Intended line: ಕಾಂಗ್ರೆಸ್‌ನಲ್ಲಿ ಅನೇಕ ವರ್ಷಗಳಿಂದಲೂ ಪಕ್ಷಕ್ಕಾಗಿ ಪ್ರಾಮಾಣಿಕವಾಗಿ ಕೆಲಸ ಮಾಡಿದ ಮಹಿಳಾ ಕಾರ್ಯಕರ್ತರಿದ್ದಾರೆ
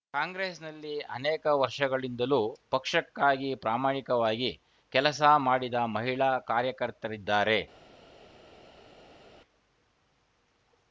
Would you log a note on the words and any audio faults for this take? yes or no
no